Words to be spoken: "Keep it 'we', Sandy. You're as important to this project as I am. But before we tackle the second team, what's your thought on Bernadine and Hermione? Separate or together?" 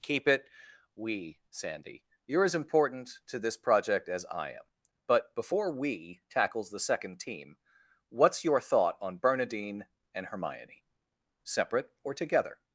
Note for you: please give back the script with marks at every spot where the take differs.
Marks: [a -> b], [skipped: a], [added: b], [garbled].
"Keep it 'we', Sandy. You're as important to this project as I am. But before we [tackle -> tackles] the second team, what's your thought on Bernadine and Hermione? Separate or together?"